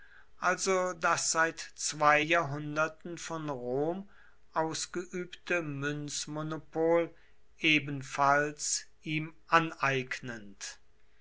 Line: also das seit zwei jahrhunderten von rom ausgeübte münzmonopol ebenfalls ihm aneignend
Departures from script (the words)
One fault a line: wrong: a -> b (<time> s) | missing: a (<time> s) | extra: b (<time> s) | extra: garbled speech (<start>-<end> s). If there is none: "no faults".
no faults